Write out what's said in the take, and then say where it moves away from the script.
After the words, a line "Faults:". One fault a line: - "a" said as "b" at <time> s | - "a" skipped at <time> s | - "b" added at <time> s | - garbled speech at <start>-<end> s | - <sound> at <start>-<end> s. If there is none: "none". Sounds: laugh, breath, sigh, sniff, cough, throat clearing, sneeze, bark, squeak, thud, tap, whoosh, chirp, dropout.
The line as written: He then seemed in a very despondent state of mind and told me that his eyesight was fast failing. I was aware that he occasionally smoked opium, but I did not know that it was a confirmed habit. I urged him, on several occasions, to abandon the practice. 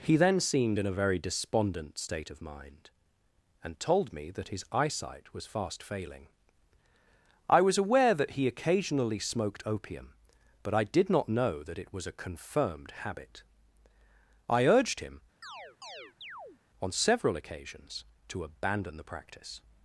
He then seemed in a very despondent state of mind and told me that his eyesight was fast failing. I was aware that he occasionally smoked opium, but I did not know that it was a confirmed habit. I urged him, on several occasions, to abandon the practice.
Faults:
- chirp at 15.4-16.6 s